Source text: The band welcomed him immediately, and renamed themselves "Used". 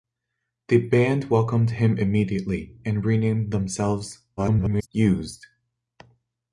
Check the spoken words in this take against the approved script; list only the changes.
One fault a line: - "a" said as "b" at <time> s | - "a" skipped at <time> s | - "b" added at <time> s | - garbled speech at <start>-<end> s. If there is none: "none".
- garbled speech at 4.4-4.9 s